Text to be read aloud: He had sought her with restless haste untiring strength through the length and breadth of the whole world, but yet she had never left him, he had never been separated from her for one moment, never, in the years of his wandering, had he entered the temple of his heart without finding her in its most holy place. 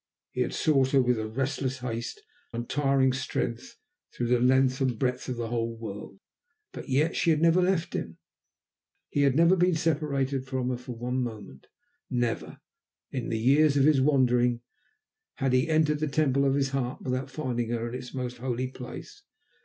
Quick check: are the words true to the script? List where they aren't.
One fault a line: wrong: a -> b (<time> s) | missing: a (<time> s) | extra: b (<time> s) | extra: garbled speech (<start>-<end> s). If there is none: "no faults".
no faults